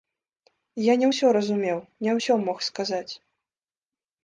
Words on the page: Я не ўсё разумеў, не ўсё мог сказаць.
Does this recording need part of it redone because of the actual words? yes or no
no